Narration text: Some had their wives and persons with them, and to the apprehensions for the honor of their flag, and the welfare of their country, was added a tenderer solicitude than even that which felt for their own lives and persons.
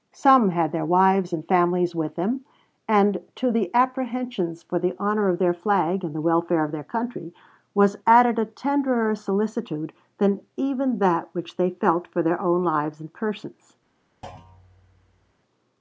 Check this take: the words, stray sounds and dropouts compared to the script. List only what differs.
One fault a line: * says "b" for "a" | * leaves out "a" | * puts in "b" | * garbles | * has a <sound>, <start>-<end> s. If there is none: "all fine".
* says "families" for "persons"
* puts in "they"
* has a thud, 14.2-15.3 s